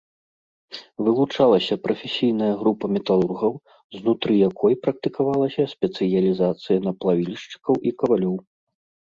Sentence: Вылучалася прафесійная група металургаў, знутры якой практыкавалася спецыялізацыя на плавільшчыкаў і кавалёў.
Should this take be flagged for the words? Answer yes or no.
no